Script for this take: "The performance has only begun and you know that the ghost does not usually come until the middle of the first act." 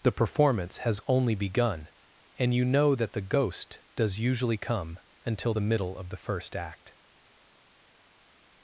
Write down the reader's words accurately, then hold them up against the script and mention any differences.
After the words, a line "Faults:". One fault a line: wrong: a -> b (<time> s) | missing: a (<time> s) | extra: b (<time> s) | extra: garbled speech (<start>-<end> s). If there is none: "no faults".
"The performance has only begun and you know that the ghost does usually come until the middle of the first act."
Faults:
missing: not (4.2 s)